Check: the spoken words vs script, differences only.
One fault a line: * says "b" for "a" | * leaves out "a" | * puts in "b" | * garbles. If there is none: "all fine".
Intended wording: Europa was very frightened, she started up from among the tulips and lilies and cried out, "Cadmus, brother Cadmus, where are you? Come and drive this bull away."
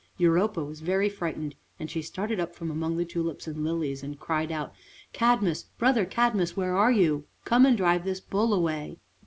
* puts in "and"